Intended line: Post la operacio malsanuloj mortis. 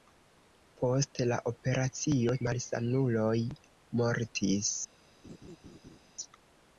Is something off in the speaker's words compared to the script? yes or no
no